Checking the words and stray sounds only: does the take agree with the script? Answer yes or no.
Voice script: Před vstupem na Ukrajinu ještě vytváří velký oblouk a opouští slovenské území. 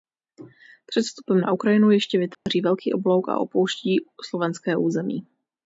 no